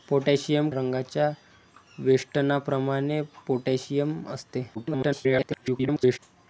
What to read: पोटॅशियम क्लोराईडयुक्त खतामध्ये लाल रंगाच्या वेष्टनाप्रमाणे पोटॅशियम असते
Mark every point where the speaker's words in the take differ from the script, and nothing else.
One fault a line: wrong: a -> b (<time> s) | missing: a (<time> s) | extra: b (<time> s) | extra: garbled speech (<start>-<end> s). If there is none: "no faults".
missing: क्लोराईडयुक्त खतामध्ये लाल (0.7 s)
extra: garbled speech (4.7-6.2 s)